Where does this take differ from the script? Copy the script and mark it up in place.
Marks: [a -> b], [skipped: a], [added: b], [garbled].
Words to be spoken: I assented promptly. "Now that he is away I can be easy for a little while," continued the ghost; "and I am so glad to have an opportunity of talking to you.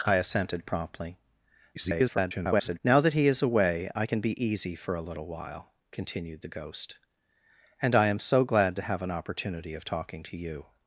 I assented promptly. [garbled] "Now that he is away I can be easy for a little while," continued the ghost; "and I am so glad to have an opportunity of talking to you.